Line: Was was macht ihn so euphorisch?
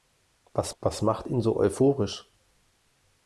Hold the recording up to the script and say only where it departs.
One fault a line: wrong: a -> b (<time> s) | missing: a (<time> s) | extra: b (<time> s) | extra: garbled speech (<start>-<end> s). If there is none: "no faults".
no faults